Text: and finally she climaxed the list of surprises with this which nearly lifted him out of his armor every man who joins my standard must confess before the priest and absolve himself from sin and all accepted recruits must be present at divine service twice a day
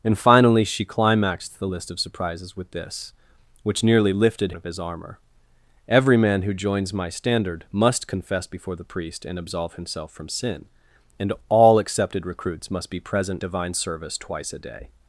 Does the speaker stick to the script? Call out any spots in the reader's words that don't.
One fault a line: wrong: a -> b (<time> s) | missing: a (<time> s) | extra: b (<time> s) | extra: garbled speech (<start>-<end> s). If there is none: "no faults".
missing: him out (4.5 s)
missing: at (13.4 s)